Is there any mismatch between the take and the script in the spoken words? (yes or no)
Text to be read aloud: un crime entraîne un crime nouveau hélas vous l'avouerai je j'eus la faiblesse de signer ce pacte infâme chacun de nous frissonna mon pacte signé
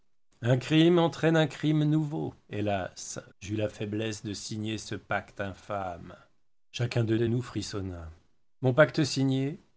yes